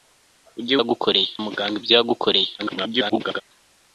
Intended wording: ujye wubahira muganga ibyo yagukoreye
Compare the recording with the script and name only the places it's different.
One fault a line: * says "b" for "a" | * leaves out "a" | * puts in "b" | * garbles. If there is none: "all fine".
* says "yagukoreye" for "wubahira"
* garbles